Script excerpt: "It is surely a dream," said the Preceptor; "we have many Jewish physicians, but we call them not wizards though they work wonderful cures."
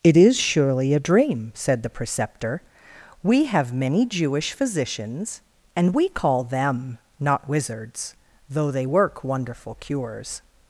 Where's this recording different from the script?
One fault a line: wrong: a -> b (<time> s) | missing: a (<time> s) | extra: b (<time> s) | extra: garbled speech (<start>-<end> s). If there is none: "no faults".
wrong: but -> and (5.8 s)